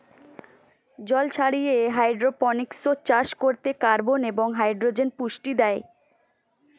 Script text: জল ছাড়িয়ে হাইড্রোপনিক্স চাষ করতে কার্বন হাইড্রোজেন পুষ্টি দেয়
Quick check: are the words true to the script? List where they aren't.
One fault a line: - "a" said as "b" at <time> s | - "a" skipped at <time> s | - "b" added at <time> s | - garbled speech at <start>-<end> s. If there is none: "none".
- "এবং" added at 4.3 s